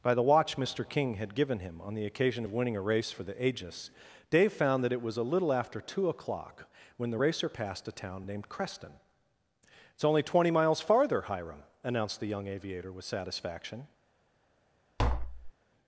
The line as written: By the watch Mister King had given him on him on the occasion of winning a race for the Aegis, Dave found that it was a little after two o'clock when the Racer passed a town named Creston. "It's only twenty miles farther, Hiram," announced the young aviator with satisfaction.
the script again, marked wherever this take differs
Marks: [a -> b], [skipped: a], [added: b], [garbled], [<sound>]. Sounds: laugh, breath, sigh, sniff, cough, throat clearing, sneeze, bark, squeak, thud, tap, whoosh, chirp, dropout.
By the watch Mister King had given him on [skipped: him on] the occasion of winning a race for the Aegis, Dave found that it was a little after two o'clock when the Racer passed a town named Creston. "It's only twenty miles farther, Hiram," announced the young aviator with satisfaction. [tap]